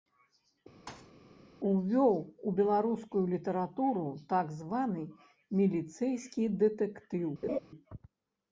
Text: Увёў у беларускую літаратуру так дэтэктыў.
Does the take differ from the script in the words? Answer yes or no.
yes